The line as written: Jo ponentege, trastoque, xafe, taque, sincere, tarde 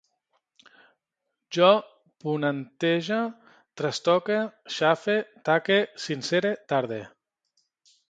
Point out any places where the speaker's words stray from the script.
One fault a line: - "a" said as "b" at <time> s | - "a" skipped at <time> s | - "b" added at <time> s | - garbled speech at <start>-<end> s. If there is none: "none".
none